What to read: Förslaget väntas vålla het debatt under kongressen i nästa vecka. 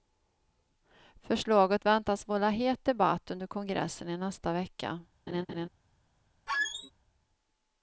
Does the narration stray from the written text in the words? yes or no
no